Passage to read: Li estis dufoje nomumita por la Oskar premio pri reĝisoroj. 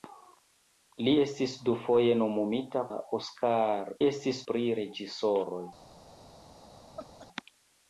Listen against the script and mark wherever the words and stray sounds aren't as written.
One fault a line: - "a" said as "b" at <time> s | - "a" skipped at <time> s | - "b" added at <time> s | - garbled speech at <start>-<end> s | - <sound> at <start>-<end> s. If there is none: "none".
- "por" skipped at 2.8 s
- "premio" said as "estis" at 4.1 s
- laugh at 7.0-7.3 s